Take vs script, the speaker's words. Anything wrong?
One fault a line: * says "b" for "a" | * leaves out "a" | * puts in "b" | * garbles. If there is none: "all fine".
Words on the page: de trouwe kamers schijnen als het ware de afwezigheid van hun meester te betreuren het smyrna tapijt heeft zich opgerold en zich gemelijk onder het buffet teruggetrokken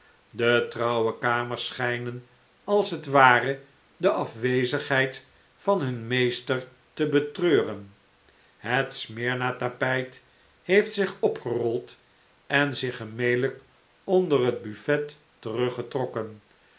all fine